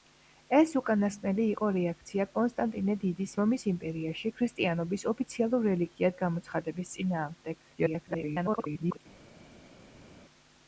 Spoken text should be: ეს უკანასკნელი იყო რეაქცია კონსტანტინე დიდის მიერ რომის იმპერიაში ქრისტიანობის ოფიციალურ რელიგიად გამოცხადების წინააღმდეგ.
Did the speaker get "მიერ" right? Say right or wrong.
wrong